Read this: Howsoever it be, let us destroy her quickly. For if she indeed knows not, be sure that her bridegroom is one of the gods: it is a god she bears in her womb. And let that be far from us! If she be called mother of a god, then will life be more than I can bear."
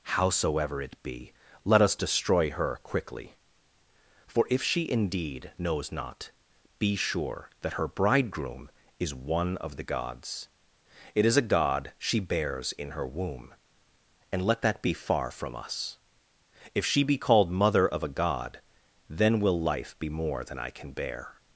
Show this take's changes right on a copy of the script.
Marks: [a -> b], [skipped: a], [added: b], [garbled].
Howsoever it be, let us destroy her quickly. For if she indeed knows not, be sure that her bridegroom is one of the gods: it is a god she bears in her womb. And let that be far from us! If she be called mother of a god, then will life be more than I can bear."